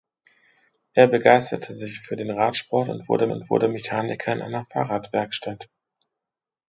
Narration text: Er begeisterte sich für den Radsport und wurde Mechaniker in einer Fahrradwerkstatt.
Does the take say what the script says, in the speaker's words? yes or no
no